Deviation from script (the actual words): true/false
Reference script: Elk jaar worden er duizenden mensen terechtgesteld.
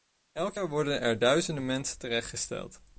false